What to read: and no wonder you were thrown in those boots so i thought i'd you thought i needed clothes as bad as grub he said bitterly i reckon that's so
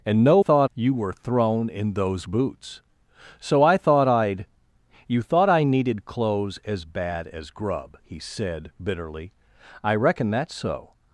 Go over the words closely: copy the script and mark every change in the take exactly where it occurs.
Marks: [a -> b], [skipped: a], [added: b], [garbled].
and no [wonder -> thought] you were thrown in those boots so i thought i'd you thought i needed clothes as bad as grub he said bitterly i reckon that's so